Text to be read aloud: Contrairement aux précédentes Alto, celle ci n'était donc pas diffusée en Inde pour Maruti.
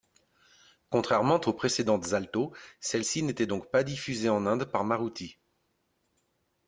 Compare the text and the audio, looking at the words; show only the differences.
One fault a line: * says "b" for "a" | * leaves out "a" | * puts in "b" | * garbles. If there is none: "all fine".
* says "par" for "pour"